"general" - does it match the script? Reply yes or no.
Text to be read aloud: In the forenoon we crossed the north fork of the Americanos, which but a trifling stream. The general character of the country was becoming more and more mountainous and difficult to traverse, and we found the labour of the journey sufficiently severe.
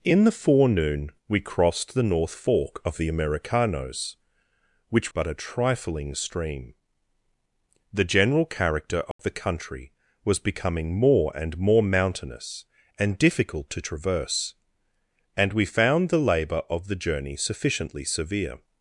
yes